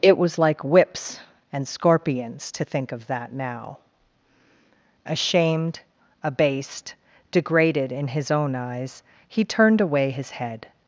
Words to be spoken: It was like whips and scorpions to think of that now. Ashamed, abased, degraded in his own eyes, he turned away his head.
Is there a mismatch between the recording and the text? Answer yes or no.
no